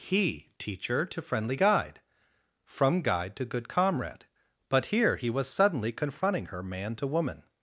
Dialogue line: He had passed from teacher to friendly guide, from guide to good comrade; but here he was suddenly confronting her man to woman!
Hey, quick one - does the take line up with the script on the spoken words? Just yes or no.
no